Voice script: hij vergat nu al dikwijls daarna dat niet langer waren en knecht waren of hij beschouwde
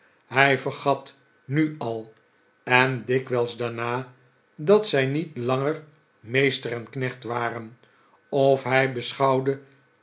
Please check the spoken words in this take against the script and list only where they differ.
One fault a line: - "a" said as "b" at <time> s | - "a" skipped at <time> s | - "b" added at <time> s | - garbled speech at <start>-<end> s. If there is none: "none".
- "en" added at 2.6 s
- "zij" added at 4.9 s
- "waren" said as "meester" at 6.2 s